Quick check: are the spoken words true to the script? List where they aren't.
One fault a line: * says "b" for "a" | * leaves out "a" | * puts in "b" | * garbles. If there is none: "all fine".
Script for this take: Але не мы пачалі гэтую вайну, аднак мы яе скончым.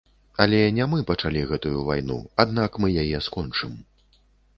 all fine